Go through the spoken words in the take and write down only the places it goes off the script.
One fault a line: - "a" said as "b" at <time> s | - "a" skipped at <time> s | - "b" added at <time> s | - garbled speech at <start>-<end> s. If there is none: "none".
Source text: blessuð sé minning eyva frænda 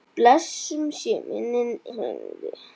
- "eyva" skipped at 1.7 s